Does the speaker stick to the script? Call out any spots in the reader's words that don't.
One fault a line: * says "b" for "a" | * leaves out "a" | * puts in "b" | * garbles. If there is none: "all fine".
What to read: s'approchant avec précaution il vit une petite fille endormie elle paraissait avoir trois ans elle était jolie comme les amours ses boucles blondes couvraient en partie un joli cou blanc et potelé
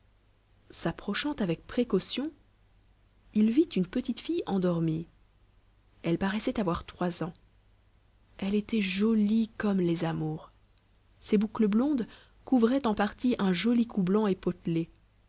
all fine